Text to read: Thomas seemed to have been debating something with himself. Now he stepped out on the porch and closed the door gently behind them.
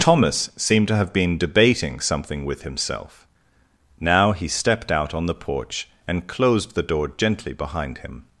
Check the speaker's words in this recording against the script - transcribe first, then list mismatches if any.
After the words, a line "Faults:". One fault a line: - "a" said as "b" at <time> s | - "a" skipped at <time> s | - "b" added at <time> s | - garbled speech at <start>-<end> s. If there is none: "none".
Thomas seemed to have been debating something with himself. Now he stepped out on the porch and closed the door gently behind him.
Faults:
- "them" said as "him" at 8.0 s